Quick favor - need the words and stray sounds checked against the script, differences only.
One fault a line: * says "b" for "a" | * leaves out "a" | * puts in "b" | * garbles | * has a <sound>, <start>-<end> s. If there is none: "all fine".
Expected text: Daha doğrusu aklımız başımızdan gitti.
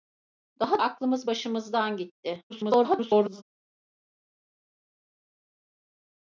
* leaves out "doğrusu"
* garbles